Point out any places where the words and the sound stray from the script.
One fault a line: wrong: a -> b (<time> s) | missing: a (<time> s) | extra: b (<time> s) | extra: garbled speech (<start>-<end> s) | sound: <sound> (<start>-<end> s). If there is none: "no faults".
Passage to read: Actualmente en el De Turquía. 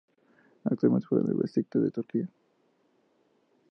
extra: juega (1.1 s)
extra: Beşiktaş (1.4 s)